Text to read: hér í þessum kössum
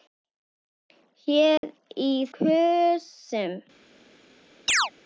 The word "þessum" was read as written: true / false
false